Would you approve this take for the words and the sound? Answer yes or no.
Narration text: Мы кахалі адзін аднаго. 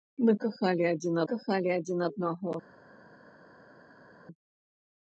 no